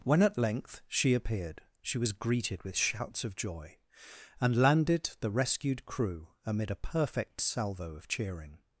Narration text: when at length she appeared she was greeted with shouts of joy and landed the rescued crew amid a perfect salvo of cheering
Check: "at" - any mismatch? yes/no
no